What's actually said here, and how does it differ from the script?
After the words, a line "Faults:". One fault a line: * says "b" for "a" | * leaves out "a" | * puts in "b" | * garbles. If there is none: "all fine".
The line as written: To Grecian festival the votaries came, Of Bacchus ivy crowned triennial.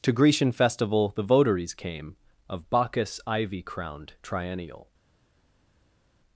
To Grecian festival the votaries came, Of Bacchus ivy crowned triennial.
Faults:
all fine